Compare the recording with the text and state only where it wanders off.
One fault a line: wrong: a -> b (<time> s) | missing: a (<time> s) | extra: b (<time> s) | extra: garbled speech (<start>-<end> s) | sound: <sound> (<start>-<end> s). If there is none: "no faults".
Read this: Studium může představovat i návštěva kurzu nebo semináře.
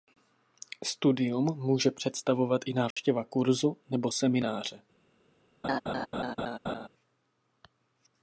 sound: dropout (2.9-3.0 s)
sound: laugh (5.6-6.9 s)